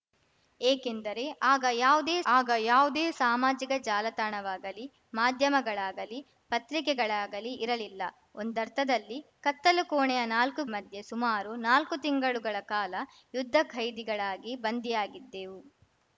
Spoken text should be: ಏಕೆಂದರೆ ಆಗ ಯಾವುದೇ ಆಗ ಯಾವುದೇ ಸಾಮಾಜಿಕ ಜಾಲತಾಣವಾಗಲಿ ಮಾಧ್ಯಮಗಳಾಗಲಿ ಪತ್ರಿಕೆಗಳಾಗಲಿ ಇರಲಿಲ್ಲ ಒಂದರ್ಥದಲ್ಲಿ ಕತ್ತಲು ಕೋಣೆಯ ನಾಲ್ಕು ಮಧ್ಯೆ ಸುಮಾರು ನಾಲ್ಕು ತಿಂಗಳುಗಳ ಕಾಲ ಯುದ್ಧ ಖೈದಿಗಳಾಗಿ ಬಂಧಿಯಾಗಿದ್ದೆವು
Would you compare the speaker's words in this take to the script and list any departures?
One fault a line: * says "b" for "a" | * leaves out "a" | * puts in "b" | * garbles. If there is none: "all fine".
all fine